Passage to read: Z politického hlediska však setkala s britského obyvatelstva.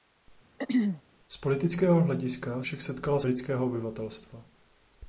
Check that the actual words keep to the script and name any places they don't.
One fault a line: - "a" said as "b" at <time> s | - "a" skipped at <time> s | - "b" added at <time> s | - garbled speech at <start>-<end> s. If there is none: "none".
none